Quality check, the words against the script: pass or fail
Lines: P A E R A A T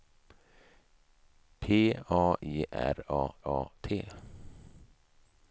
pass